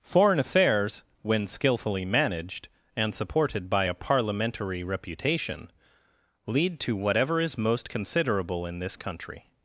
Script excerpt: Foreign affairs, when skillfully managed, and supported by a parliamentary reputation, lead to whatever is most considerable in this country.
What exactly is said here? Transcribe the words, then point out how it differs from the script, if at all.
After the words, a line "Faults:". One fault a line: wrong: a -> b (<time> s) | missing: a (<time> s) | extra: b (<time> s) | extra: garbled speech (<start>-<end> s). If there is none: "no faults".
Foreign affairs, when skillfully managed, and supported by a parliamentary reputation, lead to whatever is most considerable in this country.
Faults:
no faults